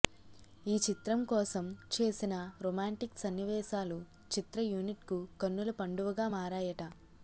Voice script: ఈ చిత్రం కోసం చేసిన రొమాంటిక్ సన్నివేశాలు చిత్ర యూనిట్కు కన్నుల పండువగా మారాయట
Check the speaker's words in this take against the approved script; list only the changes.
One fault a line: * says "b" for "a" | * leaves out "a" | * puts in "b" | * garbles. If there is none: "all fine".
all fine